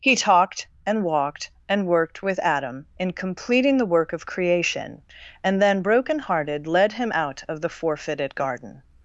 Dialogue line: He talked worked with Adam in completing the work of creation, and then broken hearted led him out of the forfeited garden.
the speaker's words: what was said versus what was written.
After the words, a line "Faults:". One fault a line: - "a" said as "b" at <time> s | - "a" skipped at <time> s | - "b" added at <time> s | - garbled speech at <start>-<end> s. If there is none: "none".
He talked and walked and worked with Adam in completing the work of creation, and then broken hearted led him out of the forfeited garden.
Faults:
- "and walked and" added at 0.8 s